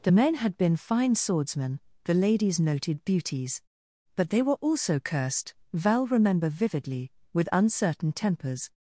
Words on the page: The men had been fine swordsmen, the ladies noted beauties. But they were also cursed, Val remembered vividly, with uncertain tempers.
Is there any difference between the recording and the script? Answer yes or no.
yes